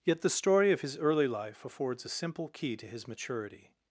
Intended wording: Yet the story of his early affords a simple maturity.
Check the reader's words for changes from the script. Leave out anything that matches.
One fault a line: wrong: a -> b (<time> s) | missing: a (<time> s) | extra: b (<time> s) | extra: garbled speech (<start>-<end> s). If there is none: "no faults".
extra: life (1.3 s)
extra: key to his (2.5 s)